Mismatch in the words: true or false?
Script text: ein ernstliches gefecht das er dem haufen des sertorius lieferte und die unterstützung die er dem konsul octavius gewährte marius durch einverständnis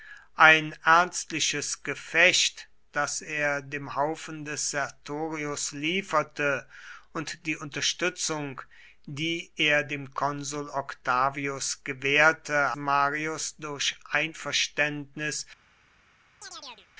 false